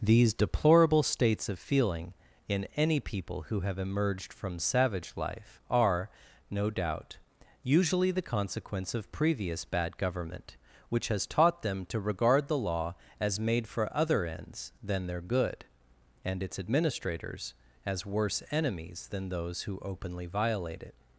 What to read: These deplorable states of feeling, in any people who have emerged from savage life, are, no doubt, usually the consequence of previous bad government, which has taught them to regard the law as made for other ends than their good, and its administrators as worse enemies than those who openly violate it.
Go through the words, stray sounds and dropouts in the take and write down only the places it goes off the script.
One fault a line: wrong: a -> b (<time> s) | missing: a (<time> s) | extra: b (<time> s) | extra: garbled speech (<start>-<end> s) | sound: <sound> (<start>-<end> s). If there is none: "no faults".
no faults